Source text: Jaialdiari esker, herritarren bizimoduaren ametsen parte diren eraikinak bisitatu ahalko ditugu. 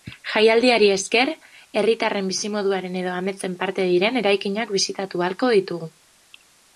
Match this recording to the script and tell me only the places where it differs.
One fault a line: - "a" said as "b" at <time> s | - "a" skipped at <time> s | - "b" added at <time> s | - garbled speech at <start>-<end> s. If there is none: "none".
- "edo" added at 3.0 s